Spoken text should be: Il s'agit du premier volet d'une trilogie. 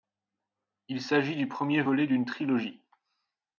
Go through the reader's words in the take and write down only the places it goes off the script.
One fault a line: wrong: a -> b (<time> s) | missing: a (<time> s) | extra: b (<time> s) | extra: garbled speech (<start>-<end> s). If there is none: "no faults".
no faults